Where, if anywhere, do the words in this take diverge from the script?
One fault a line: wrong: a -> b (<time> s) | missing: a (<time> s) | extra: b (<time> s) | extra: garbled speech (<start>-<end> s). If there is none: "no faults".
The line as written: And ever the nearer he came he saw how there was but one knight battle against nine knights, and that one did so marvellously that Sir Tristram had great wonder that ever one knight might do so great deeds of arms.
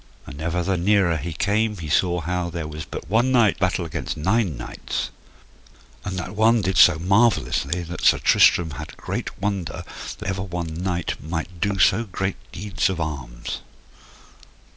no faults